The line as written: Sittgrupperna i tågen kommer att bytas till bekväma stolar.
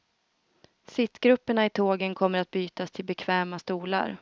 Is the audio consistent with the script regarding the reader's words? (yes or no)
yes